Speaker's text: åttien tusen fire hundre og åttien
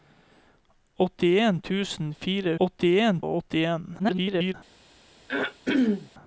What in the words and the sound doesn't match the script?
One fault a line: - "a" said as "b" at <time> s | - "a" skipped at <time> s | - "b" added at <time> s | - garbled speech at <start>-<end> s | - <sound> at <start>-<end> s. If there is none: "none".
- "hundre" said as "åttien" at 2.7 s
- garbled speech at 4.0-4.5 s
- throat clearing at 5.3-6.1 s